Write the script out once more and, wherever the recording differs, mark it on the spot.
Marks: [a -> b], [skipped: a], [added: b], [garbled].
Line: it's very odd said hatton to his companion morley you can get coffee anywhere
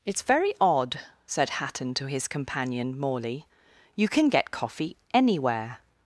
it's very odd said hatton to his companion morley you can get coffee anywhere